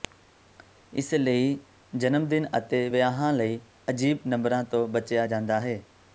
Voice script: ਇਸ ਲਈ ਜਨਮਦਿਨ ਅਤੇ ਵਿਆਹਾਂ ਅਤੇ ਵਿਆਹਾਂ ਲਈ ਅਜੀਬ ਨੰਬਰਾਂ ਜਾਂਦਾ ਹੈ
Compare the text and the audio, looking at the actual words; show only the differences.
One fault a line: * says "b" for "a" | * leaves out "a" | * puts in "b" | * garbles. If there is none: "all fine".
* leaves out "ਅਤੇ ਵਿਆਹਾਂ"
* puts in "ਤੋਂ ਬਚਿਆ"